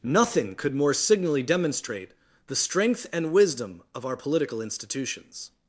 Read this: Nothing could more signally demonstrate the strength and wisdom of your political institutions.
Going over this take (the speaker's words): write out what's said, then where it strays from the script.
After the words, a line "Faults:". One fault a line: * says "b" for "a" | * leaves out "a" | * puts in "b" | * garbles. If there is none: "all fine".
Nothing could more signally demonstrate the strength and wisdom of our political institutions.
Faults:
* says "our" for "your"